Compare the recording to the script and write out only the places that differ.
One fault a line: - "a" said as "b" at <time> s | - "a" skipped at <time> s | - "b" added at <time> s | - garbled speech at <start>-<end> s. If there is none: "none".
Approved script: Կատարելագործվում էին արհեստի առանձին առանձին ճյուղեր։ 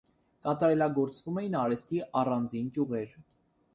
- "առանձին" skipped at 2.7 s